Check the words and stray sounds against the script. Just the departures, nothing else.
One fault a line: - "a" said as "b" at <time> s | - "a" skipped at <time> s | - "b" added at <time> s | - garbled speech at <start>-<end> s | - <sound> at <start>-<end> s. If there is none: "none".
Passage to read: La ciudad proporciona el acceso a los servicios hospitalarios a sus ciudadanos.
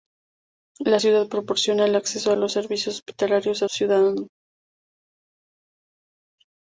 - "sus" skipped at 3.7 s